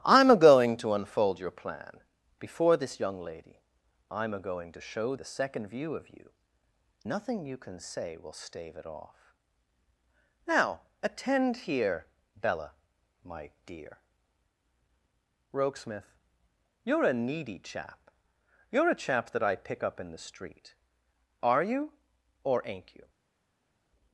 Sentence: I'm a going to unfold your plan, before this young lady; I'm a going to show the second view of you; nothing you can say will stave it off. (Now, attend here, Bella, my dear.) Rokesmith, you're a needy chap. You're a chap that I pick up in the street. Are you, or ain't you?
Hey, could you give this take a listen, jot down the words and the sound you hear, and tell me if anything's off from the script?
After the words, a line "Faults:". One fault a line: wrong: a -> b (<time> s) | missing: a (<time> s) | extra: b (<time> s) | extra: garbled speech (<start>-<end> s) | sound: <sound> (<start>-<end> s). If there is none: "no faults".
I'm a going to unfold your plan, before this young lady; I'm a going to show the second view of you; nothing you can say will stave it off. (Now, attend here, Bella, my dear.) Rokesmith, you're a needy chap. You're a chap that I pick up in the street. Are you, or ain't you?
Faults:
no faults